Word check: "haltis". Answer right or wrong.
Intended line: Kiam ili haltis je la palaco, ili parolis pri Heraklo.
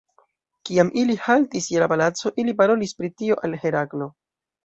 right